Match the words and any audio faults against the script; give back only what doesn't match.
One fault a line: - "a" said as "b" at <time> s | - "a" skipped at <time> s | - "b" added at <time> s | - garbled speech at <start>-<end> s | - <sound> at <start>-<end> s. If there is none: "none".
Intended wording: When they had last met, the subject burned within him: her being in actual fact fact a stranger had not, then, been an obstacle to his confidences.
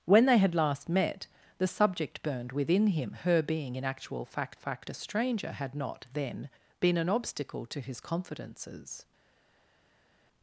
none